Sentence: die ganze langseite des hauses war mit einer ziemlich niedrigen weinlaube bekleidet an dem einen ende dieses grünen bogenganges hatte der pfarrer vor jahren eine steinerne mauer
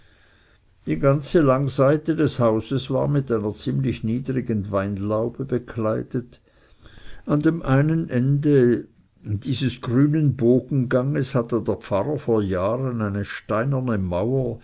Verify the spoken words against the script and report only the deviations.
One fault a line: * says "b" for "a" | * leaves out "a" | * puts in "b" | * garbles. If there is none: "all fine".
all fine